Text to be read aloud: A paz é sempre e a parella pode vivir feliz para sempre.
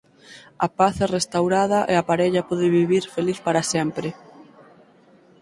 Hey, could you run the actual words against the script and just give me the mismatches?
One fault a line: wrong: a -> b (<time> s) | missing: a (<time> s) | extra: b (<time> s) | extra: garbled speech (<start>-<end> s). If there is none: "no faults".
wrong: sempre -> restaurada (1.2 s)